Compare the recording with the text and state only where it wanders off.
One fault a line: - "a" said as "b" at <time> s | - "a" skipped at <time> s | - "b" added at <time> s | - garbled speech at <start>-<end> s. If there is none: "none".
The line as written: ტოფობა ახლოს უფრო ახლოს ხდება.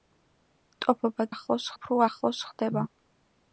none